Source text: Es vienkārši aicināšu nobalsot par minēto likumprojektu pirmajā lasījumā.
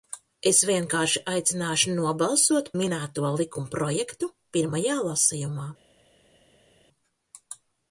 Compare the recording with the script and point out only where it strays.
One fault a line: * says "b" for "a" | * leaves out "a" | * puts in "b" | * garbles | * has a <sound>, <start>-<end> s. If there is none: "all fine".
* leaves out "par"